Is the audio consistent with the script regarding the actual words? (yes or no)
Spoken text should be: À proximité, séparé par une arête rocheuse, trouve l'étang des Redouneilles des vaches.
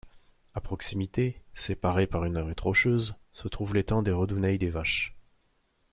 no